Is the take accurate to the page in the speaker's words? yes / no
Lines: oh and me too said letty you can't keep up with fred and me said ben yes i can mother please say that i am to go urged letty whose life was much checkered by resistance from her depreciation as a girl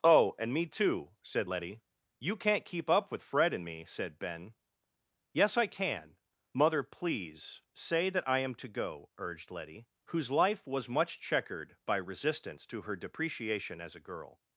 no